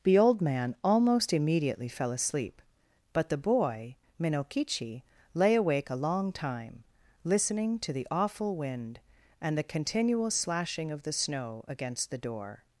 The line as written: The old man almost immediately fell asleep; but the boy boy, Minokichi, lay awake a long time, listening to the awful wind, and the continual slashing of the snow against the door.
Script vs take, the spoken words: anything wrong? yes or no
yes